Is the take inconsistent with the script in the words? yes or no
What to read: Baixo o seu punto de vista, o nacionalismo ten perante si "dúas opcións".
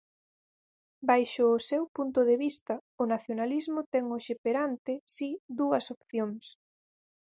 yes